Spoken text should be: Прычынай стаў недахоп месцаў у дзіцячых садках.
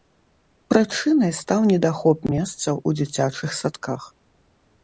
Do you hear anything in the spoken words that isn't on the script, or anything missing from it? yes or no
no